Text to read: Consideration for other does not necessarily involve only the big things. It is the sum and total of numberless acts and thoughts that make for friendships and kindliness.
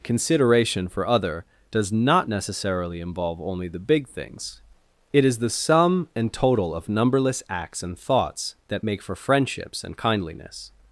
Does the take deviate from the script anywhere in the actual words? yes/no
no